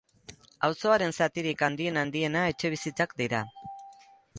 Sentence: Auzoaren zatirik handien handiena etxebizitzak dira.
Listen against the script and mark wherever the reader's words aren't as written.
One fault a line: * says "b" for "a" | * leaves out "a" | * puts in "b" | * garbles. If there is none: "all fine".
all fine